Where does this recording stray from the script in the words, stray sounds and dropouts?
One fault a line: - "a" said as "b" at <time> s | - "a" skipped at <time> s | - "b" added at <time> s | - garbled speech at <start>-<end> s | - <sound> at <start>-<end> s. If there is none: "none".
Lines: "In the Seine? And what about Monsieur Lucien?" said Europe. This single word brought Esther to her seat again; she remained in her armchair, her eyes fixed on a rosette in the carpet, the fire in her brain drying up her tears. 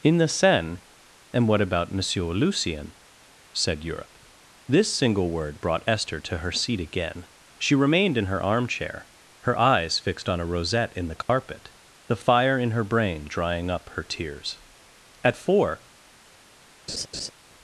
- dropout at 11.2-11.3 s
- "At four" added at 15.2 s
- laugh at 16.9-17.3 s